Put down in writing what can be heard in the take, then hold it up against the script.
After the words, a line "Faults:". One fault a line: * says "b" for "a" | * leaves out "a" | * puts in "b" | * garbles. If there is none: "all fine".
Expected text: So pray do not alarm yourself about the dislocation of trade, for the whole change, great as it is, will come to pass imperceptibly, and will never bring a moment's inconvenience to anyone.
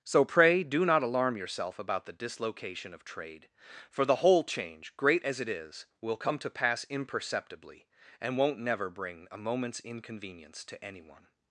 So pray do not alarm yourself about the dislocation of trade, for the whole change, great as it is, will come to pass imperceptibly, and won't never bring a moment's inconvenience to anyone.
Faults:
* says "won't" for "will"